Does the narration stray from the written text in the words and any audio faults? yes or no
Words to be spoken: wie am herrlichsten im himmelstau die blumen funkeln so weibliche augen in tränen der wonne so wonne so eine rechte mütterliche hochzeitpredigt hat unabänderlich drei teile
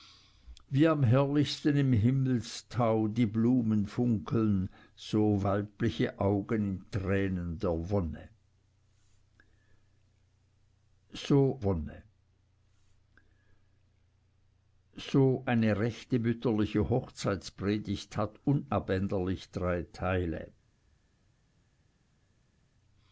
no